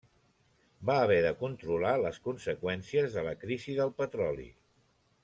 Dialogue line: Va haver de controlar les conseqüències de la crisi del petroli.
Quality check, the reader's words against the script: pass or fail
pass